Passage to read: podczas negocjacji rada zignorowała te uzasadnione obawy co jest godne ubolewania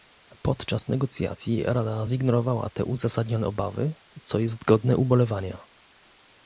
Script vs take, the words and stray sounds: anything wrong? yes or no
no